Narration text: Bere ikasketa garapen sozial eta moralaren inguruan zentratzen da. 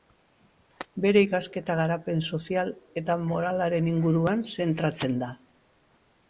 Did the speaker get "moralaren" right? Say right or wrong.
right